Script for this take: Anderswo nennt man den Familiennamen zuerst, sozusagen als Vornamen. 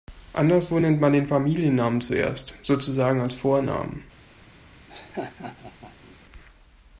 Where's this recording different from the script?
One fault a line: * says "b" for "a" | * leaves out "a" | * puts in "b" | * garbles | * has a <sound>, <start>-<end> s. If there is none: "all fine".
* has a laugh, 4.9-6.2 s